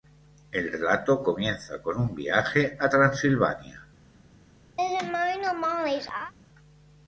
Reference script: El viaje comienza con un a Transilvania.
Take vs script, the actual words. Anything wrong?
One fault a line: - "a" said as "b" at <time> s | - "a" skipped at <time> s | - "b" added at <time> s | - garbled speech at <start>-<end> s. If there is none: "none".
- "viaje" said as "relato" at 0.7 s
- "viaje" added at 2.1 s